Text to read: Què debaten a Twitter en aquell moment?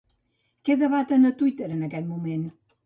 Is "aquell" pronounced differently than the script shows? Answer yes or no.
yes